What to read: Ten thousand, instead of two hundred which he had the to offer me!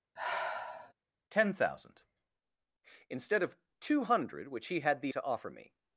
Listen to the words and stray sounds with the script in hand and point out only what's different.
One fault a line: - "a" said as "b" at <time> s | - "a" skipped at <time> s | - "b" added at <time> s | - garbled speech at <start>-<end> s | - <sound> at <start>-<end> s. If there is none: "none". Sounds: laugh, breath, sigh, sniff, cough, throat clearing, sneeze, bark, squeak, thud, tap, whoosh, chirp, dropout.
- sigh at 0.2-0.9 s